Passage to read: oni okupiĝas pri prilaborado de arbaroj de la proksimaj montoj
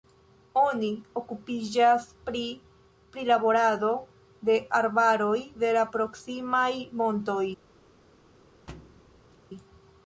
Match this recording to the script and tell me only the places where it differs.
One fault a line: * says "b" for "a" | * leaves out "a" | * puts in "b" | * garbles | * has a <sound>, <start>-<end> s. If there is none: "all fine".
* has a thud, 8.7-9.4 s